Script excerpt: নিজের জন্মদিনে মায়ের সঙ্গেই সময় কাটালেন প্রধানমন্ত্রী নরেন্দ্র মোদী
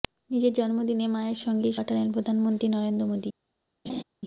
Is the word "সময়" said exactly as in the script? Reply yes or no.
no